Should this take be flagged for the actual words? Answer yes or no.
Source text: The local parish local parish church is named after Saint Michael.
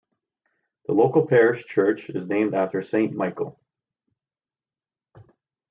yes